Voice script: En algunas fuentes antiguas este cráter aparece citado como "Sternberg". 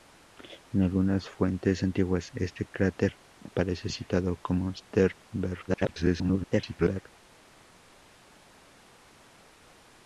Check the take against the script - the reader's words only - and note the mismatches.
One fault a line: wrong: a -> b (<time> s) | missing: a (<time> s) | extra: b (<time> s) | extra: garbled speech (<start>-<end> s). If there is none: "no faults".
extra: garbled speech (5.7-7.0 s)